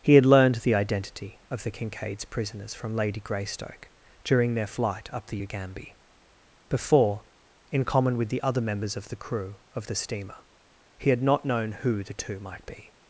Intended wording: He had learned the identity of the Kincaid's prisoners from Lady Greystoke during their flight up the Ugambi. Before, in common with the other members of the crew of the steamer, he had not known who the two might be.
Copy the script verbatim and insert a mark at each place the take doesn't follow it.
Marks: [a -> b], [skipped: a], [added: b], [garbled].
He had learned the identity of the Kincaid's prisoners from Lady Greystoke during their flight up the Ugambi. Before, in common with the other members of the crew of the steamer, he had not known who the two might be.